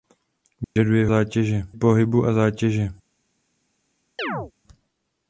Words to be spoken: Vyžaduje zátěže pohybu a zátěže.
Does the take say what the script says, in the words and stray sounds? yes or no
no